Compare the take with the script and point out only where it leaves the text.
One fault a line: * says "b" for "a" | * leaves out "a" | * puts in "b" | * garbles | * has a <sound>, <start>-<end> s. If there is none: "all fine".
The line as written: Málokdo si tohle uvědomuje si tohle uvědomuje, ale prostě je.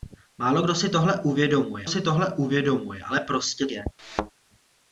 * has a thud, 4.0-4.3 s